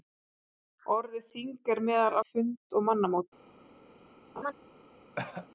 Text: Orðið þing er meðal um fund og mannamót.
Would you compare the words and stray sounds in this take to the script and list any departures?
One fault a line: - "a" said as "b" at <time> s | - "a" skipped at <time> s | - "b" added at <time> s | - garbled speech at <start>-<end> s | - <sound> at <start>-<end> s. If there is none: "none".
- laugh at 4.4-4.5 s
- cough at 5.2-5.5 s